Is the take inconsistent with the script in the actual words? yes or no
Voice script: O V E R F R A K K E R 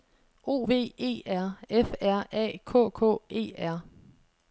no